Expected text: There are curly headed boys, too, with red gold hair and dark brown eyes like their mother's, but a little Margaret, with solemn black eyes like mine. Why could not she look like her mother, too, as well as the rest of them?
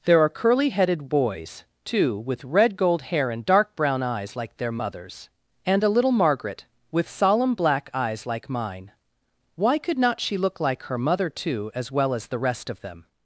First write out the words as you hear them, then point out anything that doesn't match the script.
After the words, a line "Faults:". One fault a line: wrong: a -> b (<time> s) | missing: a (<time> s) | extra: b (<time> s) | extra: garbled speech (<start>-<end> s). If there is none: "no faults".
There are curly headed boys, too, with red gold hair and dark brown eyes like their mother's, and a little Margaret, with solemn black eyes like mine. Why could not she look like her mother, too, as well as the rest of them?
Faults:
wrong: but -> and (5.6 s)